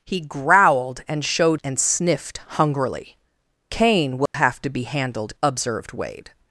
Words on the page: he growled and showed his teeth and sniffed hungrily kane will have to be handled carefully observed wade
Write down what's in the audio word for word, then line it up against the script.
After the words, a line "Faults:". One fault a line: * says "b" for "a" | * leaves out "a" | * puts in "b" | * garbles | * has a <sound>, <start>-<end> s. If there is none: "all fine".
he growled and showed and sniffed hungrily kane will have to be handled observed wade
Faults:
* leaves out "his teeth"
* has a dropout, 4.3-4.3 s
* leaves out "carefully"